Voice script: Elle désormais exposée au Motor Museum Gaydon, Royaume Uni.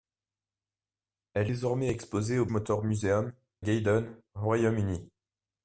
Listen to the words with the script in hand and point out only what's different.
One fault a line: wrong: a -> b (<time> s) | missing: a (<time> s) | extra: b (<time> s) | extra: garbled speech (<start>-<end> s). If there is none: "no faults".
no faults